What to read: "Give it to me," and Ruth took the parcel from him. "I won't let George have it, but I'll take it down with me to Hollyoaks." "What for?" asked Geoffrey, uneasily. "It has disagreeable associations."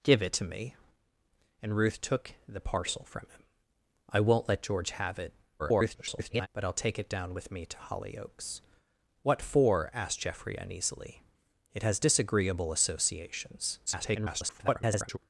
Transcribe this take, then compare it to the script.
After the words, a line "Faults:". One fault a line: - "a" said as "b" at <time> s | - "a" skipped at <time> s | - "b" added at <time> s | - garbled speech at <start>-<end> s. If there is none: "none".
"Give it to me," and Ruth took the parcel from him. "I won't let George have it, [garbled] but I'll take it down with me to Hollyoaks." "What for?" asked Geoffrey, uneasily. "It has disagreeable associations." [garbled]
Faults:
- garbled speech at 5.6-6.5 s
- garbled speech at 13.9-15.2 s